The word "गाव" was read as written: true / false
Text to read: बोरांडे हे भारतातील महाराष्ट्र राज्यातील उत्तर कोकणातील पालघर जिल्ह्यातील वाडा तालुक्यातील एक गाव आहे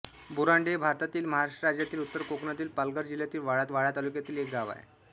true